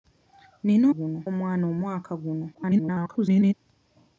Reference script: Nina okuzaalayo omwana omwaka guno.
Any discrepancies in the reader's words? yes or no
yes